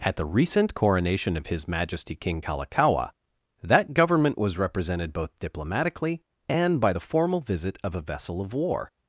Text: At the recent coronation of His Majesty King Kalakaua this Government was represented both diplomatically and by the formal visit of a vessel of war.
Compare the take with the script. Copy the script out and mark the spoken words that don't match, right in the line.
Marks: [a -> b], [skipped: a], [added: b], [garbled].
At the recent coronation of His Majesty King Kalakaua [this -> that] Government was represented both diplomatically and by the formal visit of a vessel of war.